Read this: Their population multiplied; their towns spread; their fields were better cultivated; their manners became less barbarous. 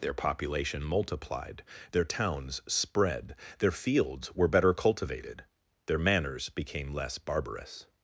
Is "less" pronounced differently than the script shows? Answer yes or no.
no